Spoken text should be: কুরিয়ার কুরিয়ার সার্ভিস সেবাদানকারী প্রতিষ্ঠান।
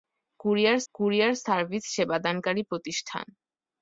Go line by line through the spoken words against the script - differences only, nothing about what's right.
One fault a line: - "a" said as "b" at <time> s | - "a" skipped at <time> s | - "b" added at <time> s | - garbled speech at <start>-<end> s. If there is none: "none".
none